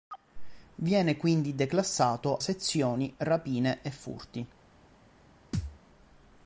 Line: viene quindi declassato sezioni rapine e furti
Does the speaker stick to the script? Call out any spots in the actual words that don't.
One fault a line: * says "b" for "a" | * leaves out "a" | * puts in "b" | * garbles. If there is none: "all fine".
all fine